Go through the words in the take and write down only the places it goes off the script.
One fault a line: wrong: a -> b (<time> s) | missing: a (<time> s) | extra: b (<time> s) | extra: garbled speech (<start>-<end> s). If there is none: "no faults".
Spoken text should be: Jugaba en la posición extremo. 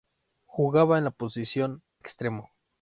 no faults